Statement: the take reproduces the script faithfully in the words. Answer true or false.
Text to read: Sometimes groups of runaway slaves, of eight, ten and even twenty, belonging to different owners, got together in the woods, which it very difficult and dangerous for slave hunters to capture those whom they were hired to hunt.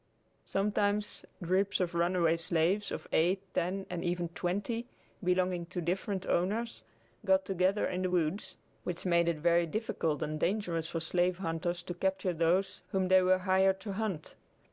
false